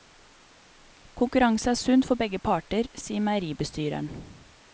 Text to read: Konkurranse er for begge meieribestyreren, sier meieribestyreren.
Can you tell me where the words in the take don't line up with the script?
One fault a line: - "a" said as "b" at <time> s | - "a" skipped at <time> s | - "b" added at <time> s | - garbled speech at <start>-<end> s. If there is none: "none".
- "sunt" added at 1.7 s
- "meieribestyreren" said as "parter" at 2.4 s